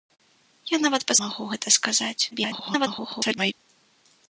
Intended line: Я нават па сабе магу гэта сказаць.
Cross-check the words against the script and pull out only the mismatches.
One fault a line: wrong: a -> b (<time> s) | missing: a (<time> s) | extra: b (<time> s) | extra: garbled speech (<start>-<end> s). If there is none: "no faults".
missing: сабе (1.2 s)
extra: garbled speech (2.3-3.5 s)